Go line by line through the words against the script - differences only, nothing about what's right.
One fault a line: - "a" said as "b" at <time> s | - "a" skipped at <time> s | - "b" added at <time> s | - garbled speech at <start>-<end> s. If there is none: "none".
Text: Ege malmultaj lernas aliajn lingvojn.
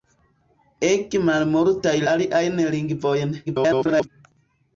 - "lernas" skipped at 1.9 s
- garbled speech at 3.5-4.1 s